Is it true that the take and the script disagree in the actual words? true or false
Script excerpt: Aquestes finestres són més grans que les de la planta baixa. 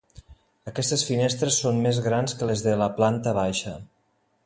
false